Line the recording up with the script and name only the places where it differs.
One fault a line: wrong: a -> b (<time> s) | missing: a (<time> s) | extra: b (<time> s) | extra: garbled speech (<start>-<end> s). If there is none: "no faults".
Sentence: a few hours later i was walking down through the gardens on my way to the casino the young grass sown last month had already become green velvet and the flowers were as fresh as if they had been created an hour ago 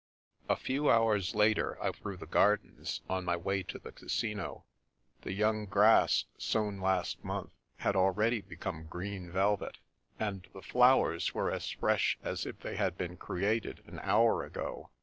missing: was walking down (1.9 s)